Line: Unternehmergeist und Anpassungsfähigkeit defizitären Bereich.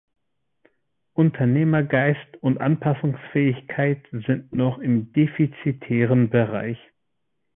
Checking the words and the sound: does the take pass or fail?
fail